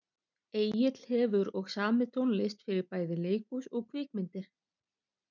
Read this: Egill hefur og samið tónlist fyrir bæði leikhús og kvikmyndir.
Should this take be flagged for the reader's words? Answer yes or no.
no